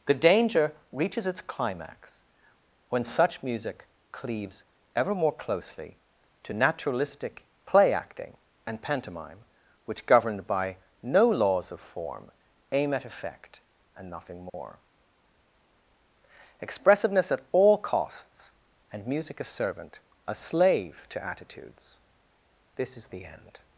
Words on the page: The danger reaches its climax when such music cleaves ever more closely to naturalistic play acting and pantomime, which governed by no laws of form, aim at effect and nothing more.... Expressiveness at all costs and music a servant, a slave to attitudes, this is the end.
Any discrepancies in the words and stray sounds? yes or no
yes